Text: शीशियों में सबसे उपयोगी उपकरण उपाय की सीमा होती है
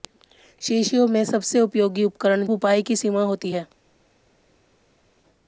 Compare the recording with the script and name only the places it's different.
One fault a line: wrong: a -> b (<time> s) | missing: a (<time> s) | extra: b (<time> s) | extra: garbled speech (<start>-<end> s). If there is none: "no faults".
no faults